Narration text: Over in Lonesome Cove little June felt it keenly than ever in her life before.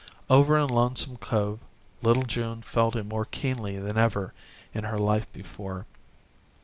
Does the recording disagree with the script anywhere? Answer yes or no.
yes